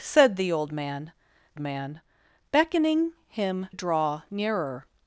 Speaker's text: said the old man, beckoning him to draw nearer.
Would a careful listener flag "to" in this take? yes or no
yes